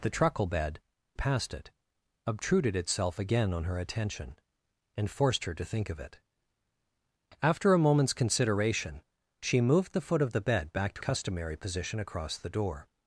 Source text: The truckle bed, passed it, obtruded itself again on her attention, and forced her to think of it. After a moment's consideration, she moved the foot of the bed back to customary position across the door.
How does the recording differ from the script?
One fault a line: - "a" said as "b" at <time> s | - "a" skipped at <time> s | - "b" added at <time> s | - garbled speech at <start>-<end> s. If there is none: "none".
none